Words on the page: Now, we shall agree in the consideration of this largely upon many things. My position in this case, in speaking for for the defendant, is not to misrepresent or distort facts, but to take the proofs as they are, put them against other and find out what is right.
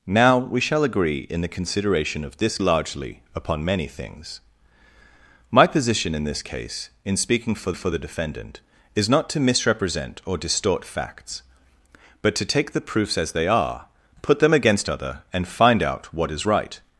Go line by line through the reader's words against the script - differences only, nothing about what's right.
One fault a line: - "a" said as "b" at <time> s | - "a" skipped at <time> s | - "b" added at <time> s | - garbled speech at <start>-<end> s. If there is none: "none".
none